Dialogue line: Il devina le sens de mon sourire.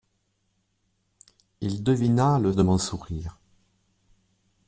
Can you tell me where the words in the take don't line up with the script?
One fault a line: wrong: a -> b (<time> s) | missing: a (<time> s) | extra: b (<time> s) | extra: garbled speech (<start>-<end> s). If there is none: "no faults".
missing: sens (2.5 s)